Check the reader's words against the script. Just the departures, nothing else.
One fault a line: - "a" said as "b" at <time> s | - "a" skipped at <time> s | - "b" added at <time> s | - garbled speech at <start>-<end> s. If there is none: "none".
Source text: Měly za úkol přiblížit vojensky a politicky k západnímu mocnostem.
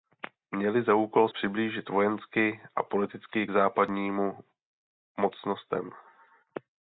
none